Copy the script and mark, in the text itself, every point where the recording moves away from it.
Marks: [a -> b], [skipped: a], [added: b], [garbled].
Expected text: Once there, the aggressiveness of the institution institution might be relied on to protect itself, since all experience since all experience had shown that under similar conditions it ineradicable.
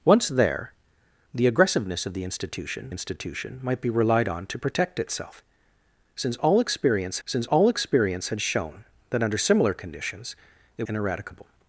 Once there, the aggressiveness of the institution institution might be relied on to protect itself, since all experience since all experience had shown that under similar conditions it ineradicable.